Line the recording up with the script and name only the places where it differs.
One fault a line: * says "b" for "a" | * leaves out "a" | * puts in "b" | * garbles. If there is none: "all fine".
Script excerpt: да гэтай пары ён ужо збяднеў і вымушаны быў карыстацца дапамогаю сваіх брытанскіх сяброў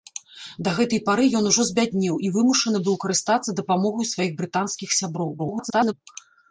* garbles